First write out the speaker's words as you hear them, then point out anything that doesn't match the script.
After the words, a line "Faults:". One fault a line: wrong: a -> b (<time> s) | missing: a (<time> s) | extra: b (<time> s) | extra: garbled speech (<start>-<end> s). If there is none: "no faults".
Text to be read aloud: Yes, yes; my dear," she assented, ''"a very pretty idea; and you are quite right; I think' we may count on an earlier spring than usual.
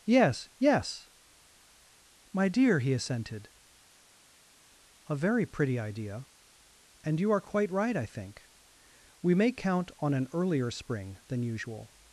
Yes, yes; my dear," he assented, ''"a very pretty idea; and you are quite right; I think' we may count on an earlier spring than usual.
Faults:
wrong: she -> he (2.8 s)